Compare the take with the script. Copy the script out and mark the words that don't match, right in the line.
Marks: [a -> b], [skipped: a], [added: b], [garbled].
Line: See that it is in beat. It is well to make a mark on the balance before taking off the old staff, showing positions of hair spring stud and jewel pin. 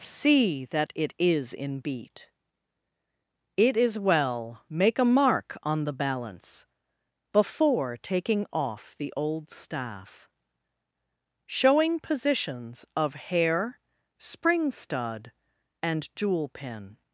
See that it is in beat. It is well [skipped: to] make a mark on the balance before taking off the old staff, showing positions of hair spring stud and jewel pin.